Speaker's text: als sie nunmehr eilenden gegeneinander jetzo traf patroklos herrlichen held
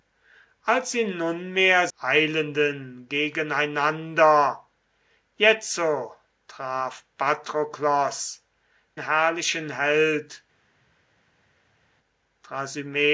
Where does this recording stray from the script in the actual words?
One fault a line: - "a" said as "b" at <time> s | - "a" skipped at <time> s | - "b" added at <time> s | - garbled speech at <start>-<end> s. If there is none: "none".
none